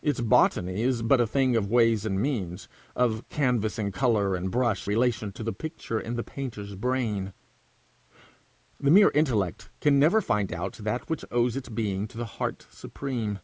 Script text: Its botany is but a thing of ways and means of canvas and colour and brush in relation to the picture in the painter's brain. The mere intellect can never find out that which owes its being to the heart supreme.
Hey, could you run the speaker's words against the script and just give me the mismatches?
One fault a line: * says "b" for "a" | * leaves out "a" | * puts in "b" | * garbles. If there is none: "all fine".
* leaves out "in"